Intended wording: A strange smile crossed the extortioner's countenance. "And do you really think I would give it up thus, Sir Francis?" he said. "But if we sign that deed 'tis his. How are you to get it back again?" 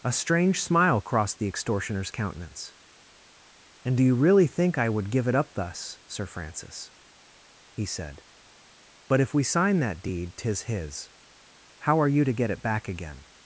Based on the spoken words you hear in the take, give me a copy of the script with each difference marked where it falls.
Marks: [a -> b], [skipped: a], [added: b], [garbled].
A strange smile crossed the extortioner's countenance. "And do you really think I would give it up thus, Sir Francis?" he said. "But if we sign that deed 'tis his. How are you to get it back again?"